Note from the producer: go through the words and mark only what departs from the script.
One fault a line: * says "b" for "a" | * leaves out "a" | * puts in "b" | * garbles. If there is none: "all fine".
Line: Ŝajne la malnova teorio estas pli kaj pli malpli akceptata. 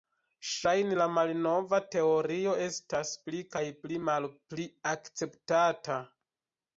all fine